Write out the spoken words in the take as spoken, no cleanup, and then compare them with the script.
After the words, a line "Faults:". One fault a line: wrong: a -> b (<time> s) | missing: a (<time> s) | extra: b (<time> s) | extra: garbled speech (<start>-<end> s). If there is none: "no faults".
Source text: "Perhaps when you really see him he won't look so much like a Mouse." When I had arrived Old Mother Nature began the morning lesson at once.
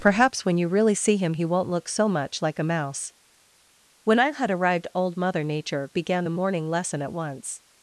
"Perhaps when you really see him he won't look so much like a Mouse." When I had arrived Old Mother Nature began the morning lesson at once.
Faults:
no faults